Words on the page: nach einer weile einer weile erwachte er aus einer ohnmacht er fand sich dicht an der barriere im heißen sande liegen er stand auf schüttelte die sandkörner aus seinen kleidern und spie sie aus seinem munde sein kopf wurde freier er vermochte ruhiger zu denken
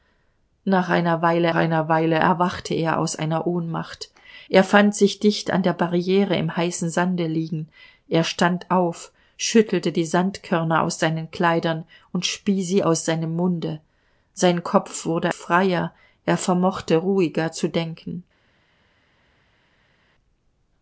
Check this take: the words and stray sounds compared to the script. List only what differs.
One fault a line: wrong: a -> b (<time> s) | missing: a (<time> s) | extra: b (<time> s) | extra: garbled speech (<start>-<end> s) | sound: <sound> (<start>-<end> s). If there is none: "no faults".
no faults